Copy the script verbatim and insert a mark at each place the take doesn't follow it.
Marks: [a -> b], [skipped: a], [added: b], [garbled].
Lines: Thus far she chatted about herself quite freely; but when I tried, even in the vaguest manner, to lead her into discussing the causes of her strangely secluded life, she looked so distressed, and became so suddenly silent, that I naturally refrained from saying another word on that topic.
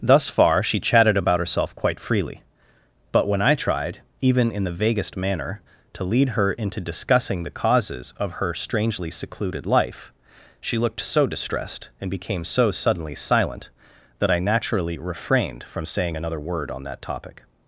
Thus far she chatted about herself quite freely; but when I tried, even in the vaguest manner, to lead her into discussing the causes of her strangely secluded life, she looked so distressed, and became so suddenly silent, that I naturally refrained from saying another word on that topic.